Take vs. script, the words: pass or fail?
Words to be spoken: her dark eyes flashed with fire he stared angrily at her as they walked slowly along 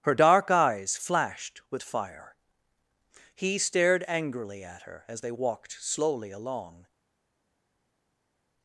pass